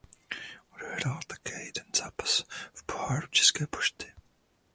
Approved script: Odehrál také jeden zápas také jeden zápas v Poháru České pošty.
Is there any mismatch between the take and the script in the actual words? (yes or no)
yes